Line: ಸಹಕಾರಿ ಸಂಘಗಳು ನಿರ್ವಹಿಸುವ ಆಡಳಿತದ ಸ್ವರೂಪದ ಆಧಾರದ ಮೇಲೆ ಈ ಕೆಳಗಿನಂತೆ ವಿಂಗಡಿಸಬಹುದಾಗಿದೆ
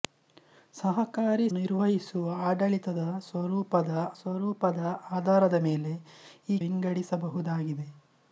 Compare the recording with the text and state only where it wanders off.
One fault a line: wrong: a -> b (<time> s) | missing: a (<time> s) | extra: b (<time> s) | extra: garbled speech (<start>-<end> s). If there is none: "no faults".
missing: ಸಂಘಗಳು (1.4 s)
extra: ಸ್ವರೂಪದ (4.2 s)
missing: ಕೆಳಗಿನಂತೆ (6.6 s)